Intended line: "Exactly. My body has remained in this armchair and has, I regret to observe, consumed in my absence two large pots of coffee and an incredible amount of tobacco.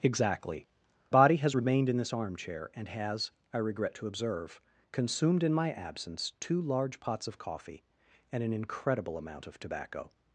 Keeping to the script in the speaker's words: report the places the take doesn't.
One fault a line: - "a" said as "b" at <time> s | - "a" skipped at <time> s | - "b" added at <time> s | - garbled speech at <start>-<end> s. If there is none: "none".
- "My" skipped at 0.7 s